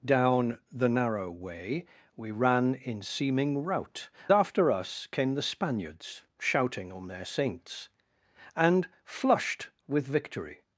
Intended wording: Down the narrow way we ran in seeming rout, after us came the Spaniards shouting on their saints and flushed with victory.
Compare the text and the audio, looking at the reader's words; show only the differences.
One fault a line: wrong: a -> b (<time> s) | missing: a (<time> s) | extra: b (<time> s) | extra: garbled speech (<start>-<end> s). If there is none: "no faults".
no faults